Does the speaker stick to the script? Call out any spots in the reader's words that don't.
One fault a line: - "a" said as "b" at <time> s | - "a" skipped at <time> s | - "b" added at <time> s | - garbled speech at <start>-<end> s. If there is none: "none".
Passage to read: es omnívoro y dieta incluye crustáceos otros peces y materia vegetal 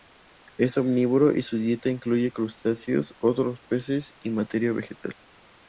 - "su" added at 1.4 s